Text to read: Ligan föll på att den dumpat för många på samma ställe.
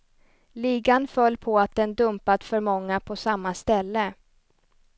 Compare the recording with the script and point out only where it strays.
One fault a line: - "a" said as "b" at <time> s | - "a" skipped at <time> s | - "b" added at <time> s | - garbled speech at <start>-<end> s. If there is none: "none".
none